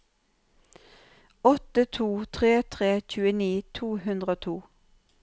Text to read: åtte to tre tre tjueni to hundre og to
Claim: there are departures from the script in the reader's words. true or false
false